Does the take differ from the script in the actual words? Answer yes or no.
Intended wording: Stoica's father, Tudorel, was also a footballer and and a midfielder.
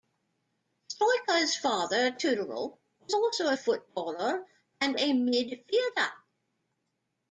yes